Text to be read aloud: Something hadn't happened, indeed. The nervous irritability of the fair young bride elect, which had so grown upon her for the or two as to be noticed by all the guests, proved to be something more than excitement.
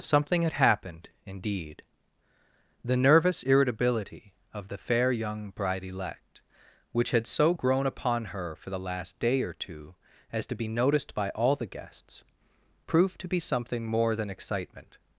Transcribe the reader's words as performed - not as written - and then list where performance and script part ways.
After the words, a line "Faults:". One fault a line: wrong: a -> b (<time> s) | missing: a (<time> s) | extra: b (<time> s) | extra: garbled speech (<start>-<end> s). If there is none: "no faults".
Something had happened, indeed. The nervous irritability of the fair young bride elect, which had so grown upon her for the last day or two as to be noticed by all the guests, proved to be something more than excitement.
Faults:
wrong: hadn't -> had (0.4 s)
extra: last day (8.8 s)